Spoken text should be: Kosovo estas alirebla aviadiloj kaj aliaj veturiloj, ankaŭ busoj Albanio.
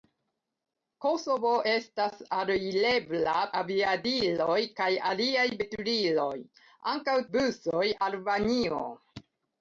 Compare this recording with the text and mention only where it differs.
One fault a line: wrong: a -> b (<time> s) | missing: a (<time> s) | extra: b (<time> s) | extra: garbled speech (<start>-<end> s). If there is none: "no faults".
no faults